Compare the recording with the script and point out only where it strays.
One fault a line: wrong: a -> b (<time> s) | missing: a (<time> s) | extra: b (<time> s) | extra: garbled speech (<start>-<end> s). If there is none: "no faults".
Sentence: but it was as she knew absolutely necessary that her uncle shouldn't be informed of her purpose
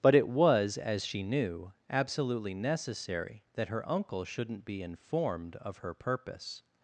no faults